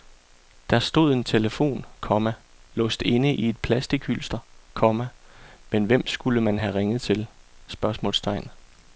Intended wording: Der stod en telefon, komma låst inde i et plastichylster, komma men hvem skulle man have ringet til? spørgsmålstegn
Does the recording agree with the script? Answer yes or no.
yes